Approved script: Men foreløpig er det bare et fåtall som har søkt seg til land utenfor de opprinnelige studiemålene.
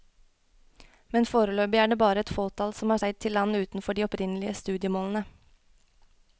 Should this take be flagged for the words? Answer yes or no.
yes